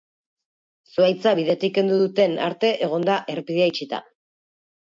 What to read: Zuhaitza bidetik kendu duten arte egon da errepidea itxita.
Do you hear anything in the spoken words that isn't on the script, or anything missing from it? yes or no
no